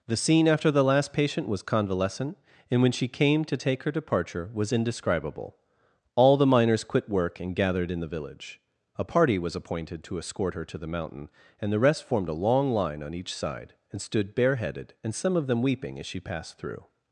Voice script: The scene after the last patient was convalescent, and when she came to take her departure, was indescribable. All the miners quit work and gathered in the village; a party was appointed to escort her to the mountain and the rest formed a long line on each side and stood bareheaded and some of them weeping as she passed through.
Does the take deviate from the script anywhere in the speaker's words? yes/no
no